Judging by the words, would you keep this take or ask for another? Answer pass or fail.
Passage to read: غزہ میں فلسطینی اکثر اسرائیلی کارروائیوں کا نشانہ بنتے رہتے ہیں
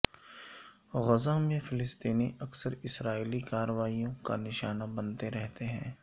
pass